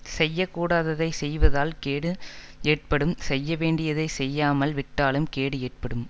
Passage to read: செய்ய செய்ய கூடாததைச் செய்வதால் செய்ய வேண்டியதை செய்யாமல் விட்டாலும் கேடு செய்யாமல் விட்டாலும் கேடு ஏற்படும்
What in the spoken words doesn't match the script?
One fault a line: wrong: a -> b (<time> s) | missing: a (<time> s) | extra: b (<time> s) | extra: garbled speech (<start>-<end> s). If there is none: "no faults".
missing: செய்ய (0.5 s)
extra: கேடு ஏற்படும் (1.8 s)
missing: செய்யாமல் விட்டாலும் கேடு (5.6 s)